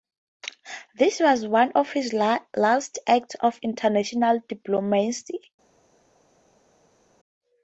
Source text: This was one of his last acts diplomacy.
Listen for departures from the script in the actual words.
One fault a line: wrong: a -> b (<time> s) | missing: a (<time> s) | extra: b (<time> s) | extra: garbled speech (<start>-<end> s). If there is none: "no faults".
extra: of international (3.4 s)